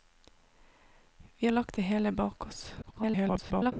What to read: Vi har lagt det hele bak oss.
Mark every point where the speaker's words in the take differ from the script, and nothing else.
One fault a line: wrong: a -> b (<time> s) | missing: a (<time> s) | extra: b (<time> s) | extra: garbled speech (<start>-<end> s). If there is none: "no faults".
missing: har (1.5 s)
extra: garbled speech (2.8-3.7 s)